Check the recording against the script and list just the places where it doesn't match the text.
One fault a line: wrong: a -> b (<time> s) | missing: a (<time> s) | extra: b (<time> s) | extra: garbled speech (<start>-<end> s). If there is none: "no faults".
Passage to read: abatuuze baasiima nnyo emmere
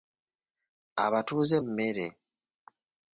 missing: baasiima nnyo (1.6 s)